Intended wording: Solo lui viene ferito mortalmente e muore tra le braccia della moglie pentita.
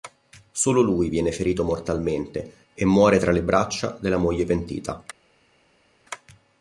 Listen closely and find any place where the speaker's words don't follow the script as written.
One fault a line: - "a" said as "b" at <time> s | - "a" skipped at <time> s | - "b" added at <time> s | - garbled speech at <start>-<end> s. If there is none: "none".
none